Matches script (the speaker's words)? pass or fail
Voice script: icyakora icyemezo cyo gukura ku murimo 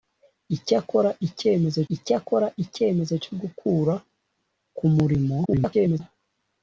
fail